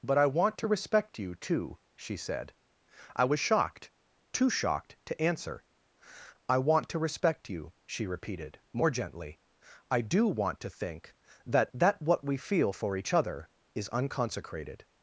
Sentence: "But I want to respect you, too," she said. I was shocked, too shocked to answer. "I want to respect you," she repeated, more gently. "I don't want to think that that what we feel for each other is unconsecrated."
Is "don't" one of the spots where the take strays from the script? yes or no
yes